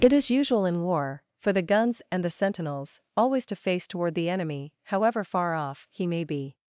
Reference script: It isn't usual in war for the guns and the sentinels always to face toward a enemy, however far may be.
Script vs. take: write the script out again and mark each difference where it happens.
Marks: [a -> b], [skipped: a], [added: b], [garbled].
It [isn't -> is] usual in war for the guns and the sentinels always to face toward [a -> the] enemy, however far [added: off he] may be.